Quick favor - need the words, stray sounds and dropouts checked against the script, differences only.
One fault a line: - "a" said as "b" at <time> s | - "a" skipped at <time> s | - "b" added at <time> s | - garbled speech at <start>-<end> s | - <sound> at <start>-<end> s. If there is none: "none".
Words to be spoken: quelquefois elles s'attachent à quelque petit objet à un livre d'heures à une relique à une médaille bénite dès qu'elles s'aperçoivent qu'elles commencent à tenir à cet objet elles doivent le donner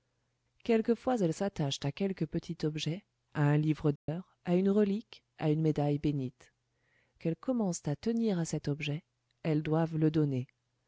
- dropout at 4.0-4.1 s
- "dès qu'elles s'aperçoivent" skipped at 6.5 s